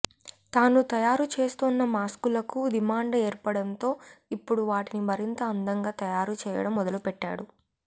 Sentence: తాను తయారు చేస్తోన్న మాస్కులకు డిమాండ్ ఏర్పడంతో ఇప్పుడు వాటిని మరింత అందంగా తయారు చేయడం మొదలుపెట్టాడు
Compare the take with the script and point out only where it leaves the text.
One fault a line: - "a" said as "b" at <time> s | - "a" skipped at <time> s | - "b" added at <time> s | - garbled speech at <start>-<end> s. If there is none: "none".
none